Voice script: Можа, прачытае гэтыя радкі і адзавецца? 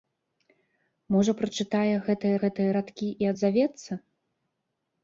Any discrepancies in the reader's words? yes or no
yes